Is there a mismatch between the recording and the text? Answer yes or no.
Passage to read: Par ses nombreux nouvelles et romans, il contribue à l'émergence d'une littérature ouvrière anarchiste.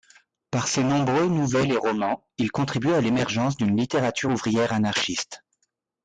no